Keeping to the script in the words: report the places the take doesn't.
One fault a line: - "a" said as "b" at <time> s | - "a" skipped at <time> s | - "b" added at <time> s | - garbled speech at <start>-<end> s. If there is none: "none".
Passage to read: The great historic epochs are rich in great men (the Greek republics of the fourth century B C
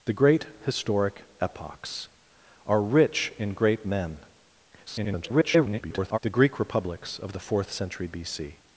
- garbled speech at 4.9-6.2 s